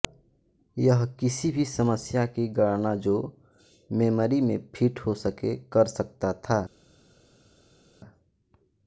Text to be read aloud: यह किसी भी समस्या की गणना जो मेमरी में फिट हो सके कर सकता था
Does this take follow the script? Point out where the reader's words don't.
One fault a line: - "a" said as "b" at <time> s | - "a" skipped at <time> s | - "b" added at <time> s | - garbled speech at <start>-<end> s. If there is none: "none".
none